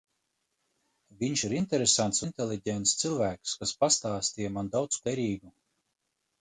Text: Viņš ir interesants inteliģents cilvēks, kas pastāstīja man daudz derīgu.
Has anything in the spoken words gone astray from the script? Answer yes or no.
no